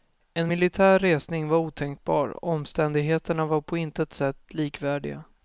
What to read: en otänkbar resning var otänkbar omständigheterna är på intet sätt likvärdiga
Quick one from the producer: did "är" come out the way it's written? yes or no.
no